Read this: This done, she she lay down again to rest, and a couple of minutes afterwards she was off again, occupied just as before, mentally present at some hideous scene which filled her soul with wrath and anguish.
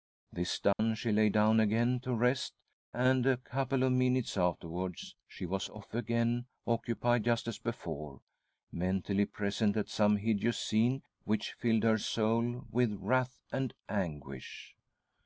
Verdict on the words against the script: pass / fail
fail